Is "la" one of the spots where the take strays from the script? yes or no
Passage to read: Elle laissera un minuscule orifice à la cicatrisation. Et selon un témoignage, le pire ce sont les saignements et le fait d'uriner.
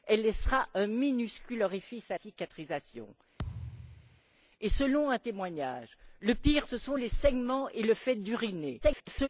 yes